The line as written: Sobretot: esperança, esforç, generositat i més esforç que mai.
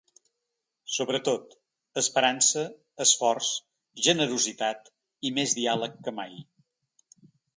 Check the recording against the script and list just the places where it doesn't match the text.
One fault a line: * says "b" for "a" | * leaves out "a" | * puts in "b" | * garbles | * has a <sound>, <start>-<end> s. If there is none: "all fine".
* says "diàleg" for "esforç"